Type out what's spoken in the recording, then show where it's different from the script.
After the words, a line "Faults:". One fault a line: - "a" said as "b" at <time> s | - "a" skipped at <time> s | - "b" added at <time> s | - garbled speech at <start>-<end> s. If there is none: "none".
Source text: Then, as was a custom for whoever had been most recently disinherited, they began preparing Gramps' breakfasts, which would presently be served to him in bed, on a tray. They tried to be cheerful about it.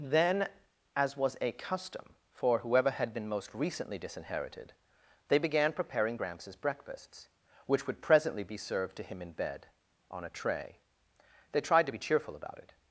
Then, as was a custom for whoever had been most recently disinherited, they began preparing Gramps' breakfasts, which would presently be served to him in bed, on a tray. They tried to be cheerful about it.
Faults:
none